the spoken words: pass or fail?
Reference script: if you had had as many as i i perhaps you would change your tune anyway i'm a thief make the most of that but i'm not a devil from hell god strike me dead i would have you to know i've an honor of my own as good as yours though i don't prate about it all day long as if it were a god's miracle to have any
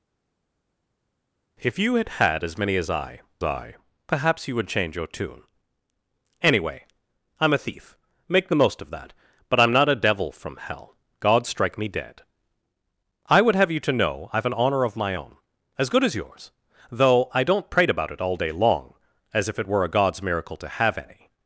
pass